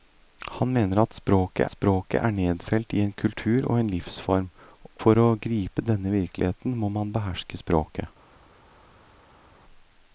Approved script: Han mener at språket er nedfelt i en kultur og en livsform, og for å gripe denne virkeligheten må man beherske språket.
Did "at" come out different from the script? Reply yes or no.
no